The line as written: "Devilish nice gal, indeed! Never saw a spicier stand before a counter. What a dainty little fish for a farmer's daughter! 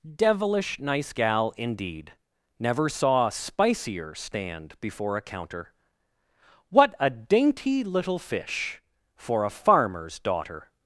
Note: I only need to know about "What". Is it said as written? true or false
true